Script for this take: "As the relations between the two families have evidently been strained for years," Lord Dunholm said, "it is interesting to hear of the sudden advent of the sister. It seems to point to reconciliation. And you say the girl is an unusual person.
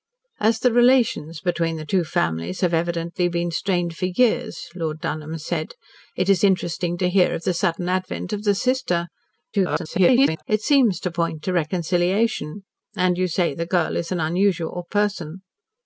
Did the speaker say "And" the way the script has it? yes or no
yes